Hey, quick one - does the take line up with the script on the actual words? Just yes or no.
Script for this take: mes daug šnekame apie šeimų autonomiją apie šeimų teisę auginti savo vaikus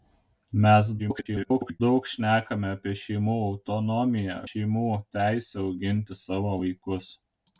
no